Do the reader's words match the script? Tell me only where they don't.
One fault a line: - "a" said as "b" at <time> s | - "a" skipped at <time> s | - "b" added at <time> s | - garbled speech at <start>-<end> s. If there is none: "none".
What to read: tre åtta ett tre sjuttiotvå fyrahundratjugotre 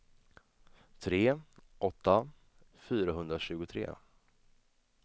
- "ett tre sjuttiotvå" skipped at 2.3 s